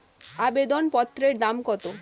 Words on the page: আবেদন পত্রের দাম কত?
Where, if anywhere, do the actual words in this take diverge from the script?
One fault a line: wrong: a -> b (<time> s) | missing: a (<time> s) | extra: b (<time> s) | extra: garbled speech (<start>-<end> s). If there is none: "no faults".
no faults